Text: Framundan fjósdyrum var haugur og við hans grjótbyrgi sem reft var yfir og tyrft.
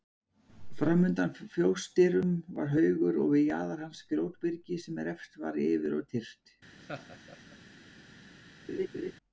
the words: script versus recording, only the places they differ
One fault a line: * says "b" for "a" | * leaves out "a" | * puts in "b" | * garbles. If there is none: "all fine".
* puts in "jaðar"